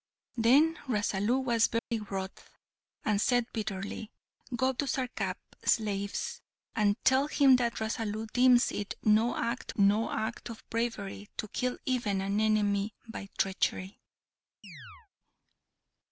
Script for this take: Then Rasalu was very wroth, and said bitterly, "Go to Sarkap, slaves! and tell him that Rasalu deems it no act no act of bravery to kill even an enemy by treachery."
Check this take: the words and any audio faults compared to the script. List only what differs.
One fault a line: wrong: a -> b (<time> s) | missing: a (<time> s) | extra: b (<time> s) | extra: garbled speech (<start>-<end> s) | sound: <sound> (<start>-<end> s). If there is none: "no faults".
sound: dropout (1.8-1.9 s)
sound: chirp (14.6-15.1 s)